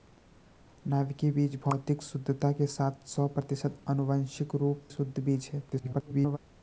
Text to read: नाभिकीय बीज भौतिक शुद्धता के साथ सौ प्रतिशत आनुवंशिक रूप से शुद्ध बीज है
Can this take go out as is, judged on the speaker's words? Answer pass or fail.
fail